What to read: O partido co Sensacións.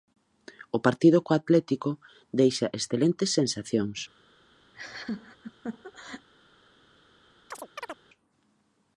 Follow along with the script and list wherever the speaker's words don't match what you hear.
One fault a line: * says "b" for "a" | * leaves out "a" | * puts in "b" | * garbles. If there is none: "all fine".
* puts in "Atlético deixa excelentes"